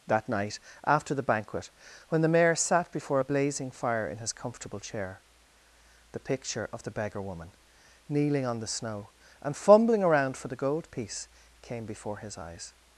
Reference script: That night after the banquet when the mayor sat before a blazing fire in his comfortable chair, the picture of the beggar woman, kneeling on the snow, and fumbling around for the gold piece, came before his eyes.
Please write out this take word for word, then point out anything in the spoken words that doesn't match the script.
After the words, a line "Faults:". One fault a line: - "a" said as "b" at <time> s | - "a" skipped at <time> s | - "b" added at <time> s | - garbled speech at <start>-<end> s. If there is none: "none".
That night after the banquet when the mayor sat before a blazing fire in his comfortable chair, the picture of the beggar woman, kneeling on the snow, and fumbling around for the gold piece, came before his eyes.
Faults:
none